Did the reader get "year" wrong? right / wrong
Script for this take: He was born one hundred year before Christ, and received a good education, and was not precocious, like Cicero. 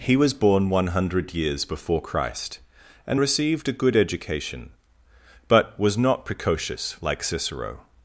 wrong